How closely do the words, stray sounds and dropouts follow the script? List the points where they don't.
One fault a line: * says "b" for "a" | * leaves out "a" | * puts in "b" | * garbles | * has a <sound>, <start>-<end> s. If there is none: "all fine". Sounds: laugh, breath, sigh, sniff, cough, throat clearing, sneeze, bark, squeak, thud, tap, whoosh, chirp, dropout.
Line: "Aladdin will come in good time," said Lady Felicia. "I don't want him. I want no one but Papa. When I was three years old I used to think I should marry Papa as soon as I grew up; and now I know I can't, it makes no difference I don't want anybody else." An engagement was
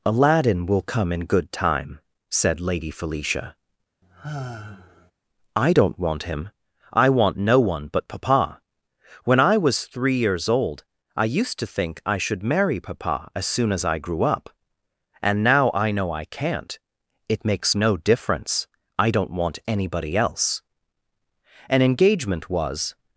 * has a sigh, 4.0-5.1 s